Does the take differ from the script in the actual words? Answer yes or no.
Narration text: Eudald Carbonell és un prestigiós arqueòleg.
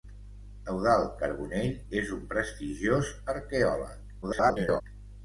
yes